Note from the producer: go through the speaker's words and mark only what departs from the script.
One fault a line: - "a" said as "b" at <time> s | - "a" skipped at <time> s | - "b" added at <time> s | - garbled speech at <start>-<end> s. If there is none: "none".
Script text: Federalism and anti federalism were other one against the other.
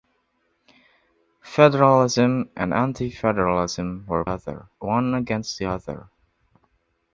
none